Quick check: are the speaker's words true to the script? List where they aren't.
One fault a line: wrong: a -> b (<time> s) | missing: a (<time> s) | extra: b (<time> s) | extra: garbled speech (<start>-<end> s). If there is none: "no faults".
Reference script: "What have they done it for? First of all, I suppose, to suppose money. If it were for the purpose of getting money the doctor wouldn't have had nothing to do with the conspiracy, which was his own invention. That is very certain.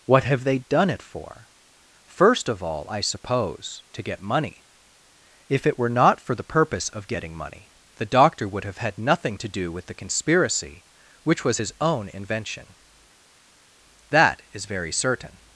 wrong: suppose -> get (4.0 s)
extra: not (5.9 s)
wrong: wouldn't -> would (8.5 s)